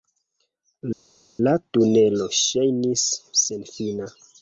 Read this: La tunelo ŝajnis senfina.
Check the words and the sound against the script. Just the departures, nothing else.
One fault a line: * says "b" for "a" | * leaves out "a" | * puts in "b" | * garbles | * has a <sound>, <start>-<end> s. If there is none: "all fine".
all fine